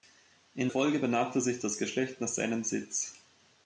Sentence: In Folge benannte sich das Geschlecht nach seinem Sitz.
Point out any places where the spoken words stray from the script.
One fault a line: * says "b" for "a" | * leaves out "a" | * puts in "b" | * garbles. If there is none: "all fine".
all fine